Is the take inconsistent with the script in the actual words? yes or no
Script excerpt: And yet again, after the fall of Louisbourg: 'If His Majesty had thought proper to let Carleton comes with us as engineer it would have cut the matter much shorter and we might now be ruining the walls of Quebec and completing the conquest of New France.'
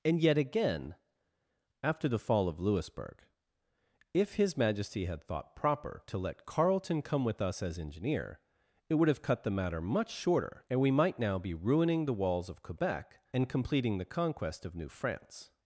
yes